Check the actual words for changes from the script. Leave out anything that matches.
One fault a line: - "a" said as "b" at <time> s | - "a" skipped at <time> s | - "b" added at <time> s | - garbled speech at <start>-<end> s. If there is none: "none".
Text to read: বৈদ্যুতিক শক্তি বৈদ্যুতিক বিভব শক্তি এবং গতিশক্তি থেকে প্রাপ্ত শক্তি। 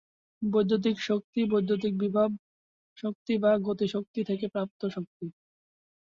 - "এবং" said as "বা" at 3.4 s